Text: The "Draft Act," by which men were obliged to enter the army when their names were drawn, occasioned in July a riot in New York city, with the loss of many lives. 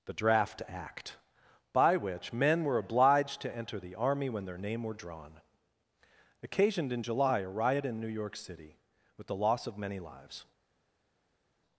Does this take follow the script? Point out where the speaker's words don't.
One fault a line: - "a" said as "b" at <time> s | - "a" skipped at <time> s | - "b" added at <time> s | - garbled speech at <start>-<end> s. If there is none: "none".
- "names" said as "name" at 4.6 s